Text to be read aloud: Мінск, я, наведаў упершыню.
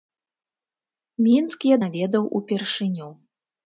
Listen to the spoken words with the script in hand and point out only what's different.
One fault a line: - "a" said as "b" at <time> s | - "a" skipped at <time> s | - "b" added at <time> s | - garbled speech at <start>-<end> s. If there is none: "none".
none